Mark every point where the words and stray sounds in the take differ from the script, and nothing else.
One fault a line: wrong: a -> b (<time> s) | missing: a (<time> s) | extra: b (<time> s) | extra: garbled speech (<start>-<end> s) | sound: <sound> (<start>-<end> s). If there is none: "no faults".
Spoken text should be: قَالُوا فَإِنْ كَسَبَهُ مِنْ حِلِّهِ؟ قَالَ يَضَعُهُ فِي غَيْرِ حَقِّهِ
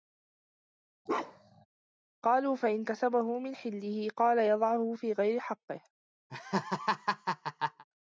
sound: bark (1.1-1.7 s)
sound: laugh (6.3-7.8 s)